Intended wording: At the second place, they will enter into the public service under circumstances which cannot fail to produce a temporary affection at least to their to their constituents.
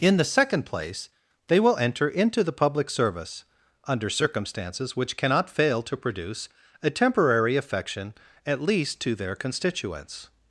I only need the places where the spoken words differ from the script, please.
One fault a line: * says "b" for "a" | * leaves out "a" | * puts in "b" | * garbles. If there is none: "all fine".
* says "In" for "At"
* leaves out "to their"